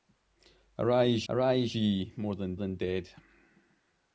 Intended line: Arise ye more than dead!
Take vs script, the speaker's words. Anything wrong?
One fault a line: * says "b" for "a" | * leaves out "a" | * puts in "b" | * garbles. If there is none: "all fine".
* puts in "arise"
* puts in "than"